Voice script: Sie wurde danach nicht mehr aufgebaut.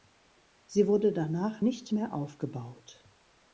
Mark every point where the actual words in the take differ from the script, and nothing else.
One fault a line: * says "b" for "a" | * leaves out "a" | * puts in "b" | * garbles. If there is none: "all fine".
all fine